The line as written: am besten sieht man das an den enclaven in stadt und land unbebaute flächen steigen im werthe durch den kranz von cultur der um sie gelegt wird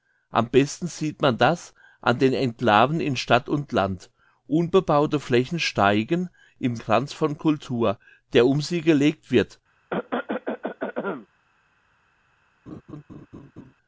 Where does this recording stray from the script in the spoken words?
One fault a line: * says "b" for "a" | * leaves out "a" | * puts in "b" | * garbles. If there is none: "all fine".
* leaves out "werthe durch den"